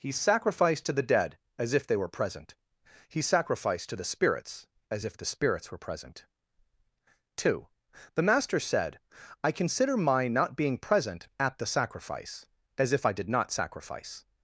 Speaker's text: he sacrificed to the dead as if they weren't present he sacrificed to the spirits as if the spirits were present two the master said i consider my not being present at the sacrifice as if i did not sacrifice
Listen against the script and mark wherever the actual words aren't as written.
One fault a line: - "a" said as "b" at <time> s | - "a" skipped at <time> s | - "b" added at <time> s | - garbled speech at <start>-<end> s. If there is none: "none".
- "weren't" said as "were" at 1.9 s